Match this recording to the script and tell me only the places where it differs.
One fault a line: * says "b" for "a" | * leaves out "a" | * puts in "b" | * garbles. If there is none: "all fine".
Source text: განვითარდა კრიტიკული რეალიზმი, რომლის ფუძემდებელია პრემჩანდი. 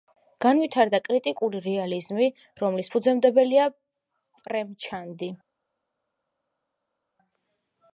all fine